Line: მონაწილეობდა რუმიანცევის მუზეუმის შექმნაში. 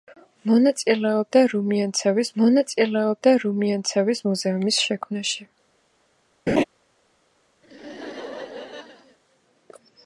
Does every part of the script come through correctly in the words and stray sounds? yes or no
no